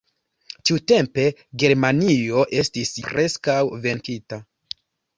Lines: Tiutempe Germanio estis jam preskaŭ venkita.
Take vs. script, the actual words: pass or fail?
fail